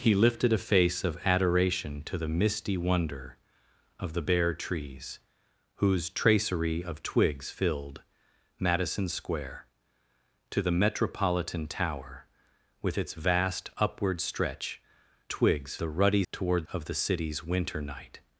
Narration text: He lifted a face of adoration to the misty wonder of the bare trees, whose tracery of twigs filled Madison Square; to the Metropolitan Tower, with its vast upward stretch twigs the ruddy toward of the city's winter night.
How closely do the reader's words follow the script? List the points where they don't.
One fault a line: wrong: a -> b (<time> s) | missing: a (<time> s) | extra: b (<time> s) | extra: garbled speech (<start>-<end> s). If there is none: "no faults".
no faults